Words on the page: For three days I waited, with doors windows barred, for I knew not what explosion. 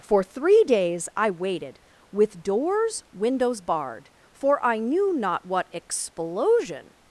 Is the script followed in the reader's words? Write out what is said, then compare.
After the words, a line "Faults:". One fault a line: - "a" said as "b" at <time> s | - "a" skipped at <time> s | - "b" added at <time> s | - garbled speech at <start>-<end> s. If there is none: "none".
For three days I waited, with doors windows barred, for I knew not what explosion.
Faults:
none